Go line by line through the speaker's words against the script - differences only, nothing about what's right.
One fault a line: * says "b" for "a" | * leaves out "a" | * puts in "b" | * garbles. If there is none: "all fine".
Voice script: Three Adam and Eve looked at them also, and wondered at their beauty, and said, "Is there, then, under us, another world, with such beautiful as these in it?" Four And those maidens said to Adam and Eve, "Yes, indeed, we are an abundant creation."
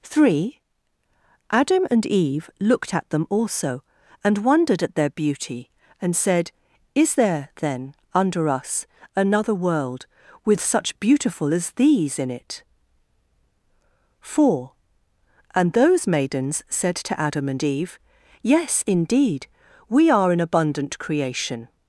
all fine